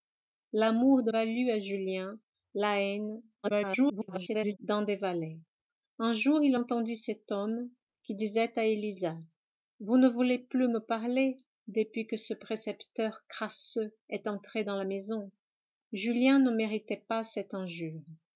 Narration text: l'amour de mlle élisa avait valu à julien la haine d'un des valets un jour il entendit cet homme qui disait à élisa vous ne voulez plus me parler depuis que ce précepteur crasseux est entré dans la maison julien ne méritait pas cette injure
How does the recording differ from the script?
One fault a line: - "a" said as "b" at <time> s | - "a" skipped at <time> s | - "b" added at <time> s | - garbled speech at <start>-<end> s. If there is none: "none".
- "mlle élisa avait" skipped at 1.1 s
- garbled speech at 3.4-4.6 s